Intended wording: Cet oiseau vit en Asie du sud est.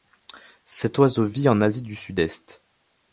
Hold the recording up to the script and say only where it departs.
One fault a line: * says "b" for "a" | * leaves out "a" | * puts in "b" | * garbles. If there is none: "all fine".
all fine